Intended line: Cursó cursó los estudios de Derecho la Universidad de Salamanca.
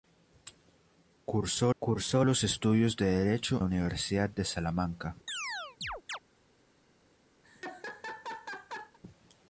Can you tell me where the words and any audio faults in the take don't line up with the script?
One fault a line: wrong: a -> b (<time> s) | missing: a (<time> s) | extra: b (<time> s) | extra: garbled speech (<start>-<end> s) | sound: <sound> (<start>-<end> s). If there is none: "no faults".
sound: chirp (5.3-6.2 s)
sound: laugh (7.4-9.0 s)